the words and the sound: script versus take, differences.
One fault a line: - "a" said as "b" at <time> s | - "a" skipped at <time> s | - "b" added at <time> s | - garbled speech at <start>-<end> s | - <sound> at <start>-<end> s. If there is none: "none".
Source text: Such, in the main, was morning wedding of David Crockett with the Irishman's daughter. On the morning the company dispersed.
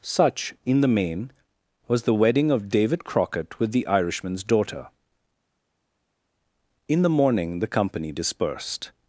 - "morning" said as "the" at 2.0 s
- "On" said as "In" at 6.9 s